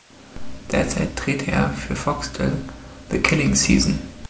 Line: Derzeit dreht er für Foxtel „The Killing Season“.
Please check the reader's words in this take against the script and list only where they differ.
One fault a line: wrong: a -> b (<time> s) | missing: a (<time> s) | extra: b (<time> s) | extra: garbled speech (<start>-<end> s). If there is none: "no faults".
no faults